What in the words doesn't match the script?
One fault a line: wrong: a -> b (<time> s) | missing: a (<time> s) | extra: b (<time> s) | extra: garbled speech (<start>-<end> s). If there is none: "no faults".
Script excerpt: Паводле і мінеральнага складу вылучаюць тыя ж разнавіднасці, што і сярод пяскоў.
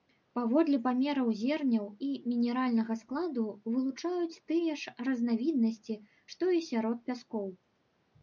extra: памераў зерняў (0.8 s)